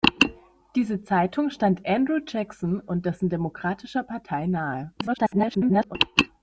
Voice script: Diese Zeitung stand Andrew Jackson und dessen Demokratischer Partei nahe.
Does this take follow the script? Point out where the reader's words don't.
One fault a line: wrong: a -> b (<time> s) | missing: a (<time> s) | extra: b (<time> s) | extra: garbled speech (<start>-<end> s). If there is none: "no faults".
extra: garbled speech (5.0-6.0 s)